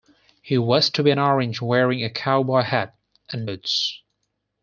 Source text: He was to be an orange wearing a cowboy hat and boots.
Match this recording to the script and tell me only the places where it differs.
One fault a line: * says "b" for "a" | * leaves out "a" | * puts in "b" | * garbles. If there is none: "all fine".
all fine